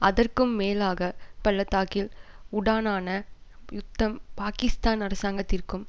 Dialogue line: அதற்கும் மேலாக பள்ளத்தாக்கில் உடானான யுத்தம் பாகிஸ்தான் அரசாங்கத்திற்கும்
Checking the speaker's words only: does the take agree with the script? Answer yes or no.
yes